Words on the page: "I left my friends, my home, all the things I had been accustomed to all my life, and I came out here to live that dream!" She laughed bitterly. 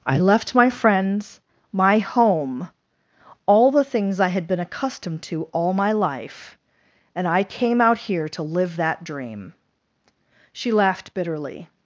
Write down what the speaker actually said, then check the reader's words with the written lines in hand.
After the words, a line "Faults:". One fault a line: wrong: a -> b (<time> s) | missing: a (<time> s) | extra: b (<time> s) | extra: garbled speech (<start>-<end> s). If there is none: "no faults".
"I left my friends, my home, all the things I had been accustomed to all my life, and I came out here to live that dream!" She laughed bitterly.
Faults:
no faults